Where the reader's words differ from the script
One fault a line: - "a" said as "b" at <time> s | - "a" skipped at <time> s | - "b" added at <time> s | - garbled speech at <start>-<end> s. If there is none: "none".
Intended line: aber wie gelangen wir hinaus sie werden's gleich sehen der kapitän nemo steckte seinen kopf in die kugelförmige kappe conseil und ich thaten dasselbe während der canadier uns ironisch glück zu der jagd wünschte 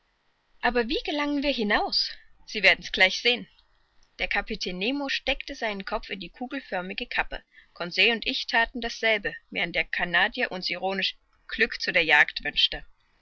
none